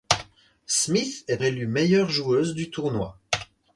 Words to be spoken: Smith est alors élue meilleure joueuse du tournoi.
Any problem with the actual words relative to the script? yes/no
yes